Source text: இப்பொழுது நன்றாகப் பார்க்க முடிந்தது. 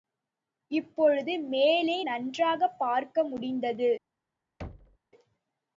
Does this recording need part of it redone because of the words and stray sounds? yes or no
yes